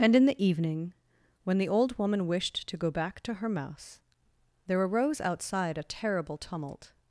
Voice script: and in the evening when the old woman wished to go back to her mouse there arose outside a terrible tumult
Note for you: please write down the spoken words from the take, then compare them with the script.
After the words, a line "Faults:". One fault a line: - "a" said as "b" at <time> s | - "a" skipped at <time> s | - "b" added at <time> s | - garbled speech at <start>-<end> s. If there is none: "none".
and in the evening when the old woman wished to go back to her mouse there arose outside a terrible tumult
Faults:
none